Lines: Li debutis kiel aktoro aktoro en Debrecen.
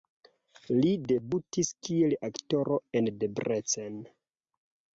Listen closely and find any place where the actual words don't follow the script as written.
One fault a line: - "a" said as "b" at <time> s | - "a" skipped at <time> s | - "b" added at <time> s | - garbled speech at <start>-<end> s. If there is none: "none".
- "aktoro" skipped at 2.8 s